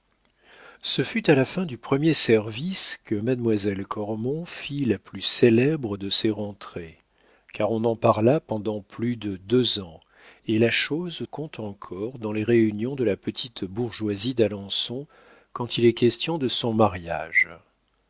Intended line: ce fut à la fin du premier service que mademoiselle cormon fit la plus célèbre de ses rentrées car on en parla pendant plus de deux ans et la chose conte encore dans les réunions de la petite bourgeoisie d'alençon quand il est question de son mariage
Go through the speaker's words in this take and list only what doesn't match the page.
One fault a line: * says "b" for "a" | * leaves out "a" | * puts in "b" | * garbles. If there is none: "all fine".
all fine